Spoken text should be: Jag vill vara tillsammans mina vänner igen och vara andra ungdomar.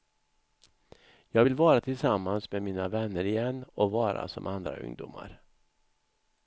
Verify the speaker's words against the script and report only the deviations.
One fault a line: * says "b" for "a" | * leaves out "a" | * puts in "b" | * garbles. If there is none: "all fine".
* puts in "med"
* puts in "som"